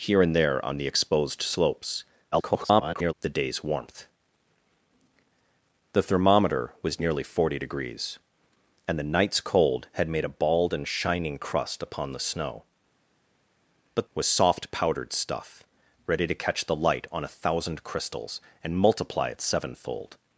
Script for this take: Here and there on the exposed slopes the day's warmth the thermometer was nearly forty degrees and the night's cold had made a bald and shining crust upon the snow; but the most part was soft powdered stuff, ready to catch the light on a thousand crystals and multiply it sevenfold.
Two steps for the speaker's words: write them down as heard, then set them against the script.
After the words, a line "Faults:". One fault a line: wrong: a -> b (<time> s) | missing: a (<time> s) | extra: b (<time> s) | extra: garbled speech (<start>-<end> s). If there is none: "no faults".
Here and there on the exposed slopes [garbled] the day's warmth the thermometer was nearly forty degrees and the night's cold had made a bald and shining crust upon the snow; but was soft powdered stuff, ready to catch the light on a thousand crystals and multiply it sevenfold.
Faults:
extra: garbled speech (2.3-3.1 s)
missing: the most part (14.1 s)